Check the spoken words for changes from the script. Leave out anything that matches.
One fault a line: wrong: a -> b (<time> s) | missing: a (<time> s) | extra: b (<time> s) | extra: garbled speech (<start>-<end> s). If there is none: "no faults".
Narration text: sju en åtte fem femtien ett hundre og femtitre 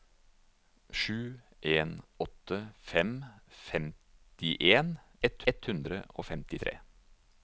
extra: ett (5.5 s)